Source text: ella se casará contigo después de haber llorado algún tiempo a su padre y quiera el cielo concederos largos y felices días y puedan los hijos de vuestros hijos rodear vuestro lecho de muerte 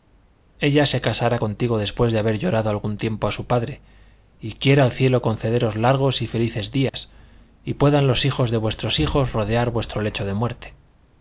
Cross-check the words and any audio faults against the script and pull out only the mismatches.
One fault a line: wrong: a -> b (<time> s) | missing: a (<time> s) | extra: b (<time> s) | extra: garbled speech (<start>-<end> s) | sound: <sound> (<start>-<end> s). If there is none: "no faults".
sound: dropout (6.9-6.9 s)